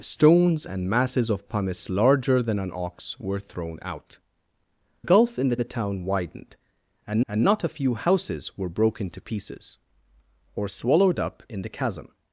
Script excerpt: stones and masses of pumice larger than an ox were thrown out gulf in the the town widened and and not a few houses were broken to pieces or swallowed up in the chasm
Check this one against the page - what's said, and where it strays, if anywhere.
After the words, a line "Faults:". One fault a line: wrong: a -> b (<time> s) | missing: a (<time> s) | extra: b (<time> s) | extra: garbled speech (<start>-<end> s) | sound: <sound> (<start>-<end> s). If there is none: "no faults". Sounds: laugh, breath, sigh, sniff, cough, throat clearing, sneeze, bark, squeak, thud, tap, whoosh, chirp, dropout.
stones and masses of pumice larger than an ox were thrown out gulf in the the town widened and and not a few houses were broken to pieces or swallowed up in the chasm
Faults:
no faults